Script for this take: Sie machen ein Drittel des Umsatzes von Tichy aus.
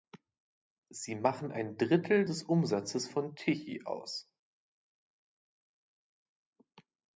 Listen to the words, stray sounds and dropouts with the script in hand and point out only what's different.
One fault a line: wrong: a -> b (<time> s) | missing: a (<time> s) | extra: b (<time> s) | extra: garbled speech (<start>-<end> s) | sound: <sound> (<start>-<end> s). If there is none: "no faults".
no faults